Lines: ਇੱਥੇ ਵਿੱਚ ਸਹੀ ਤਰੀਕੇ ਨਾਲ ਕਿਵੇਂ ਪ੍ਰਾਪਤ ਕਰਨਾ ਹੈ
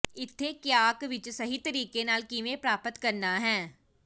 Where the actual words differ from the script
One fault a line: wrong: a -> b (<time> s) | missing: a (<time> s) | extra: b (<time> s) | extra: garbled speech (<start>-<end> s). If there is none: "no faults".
extra: ਕਿਆਕ (0.5 s)